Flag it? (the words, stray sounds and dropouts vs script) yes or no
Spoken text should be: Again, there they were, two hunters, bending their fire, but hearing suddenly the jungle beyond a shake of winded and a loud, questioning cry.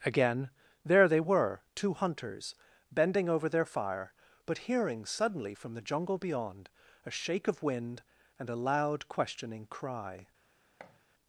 yes